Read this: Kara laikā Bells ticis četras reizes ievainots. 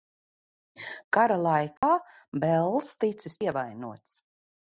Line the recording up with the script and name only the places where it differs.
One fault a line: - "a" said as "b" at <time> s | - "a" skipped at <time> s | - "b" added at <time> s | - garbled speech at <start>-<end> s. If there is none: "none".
- "četras reizes" skipped at 3.4 s